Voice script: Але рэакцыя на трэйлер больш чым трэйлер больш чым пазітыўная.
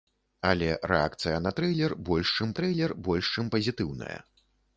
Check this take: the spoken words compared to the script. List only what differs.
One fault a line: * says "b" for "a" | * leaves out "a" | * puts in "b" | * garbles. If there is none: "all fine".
all fine